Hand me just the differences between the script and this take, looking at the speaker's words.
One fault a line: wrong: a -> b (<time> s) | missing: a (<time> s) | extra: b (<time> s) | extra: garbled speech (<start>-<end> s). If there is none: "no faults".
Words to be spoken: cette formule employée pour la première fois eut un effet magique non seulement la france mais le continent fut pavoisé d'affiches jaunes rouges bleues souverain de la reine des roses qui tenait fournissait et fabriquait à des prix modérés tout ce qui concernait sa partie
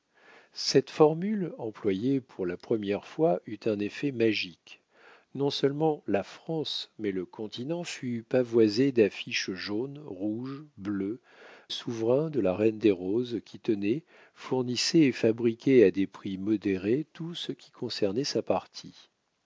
no faults